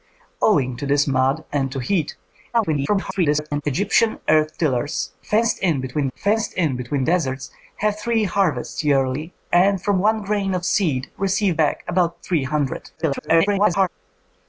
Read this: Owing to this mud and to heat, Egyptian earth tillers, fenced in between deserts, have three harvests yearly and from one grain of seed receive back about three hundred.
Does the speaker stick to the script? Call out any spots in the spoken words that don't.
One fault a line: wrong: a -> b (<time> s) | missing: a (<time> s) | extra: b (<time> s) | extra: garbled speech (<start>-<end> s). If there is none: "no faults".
extra: garbled speech (2.5-3.6 s)
extra: fenced in between (6.1 s)
extra: garbled speech (13.0-13.9 s)